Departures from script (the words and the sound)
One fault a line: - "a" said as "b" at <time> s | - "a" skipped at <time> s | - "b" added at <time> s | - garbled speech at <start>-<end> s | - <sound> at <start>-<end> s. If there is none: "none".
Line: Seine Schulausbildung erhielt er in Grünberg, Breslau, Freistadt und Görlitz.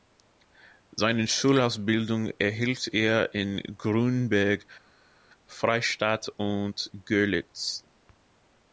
- "Breslau" skipped at 4.7 s